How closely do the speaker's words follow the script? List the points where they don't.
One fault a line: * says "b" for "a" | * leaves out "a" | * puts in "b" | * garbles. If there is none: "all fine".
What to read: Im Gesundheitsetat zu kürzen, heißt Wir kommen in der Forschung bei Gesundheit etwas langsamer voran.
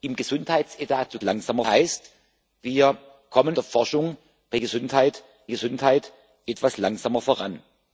* says "langsamer" for "kürzen"
* leaves out "in"
* puts in "Gesundheit"